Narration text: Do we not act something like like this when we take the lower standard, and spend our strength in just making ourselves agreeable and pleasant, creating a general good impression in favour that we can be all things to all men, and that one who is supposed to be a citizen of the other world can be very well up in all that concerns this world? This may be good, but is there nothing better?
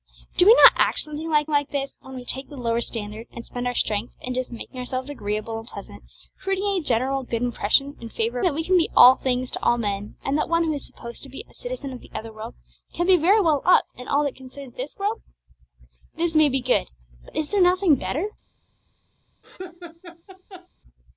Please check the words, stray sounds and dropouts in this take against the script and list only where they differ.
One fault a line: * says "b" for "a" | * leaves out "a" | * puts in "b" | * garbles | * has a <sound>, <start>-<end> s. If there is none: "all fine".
* has a laugh, 19.4-20.7 s